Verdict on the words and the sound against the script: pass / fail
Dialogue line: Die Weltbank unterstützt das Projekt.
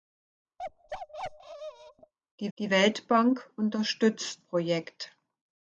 fail